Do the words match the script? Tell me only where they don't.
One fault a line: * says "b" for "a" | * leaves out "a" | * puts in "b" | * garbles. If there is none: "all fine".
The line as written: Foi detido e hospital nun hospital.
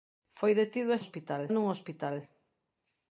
all fine